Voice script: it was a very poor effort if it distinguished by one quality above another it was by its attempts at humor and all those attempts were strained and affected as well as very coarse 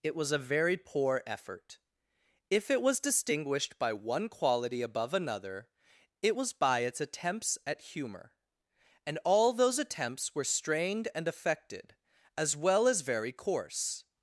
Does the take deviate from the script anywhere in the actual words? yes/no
yes